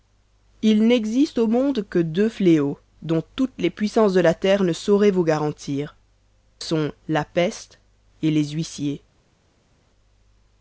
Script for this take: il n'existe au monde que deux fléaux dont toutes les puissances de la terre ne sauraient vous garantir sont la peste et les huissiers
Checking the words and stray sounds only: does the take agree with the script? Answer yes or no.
yes